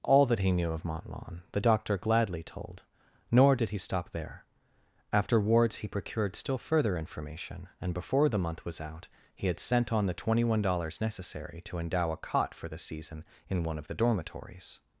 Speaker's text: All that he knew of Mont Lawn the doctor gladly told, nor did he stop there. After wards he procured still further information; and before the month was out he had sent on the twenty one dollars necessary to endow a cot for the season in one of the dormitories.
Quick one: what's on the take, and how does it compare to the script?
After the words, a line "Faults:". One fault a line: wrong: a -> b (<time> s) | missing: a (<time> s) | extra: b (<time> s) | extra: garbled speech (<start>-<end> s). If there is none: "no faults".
All that he knew of Mont Lawn the doctor gladly told, nor did he stop there. After wards he procured still further information; and before the month was out he had sent on the twenty one dollars necessary to endow a cot for the season in one of the dormitories.
Faults:
no faults